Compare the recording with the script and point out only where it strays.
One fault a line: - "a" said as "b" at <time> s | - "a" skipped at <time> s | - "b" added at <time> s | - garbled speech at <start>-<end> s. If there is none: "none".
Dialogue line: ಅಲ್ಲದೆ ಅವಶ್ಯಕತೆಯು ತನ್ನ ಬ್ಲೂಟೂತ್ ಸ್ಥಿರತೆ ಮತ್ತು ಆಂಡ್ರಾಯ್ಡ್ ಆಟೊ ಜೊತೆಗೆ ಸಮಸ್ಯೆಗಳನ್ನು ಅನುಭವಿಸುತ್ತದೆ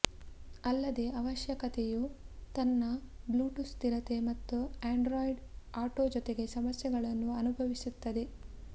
none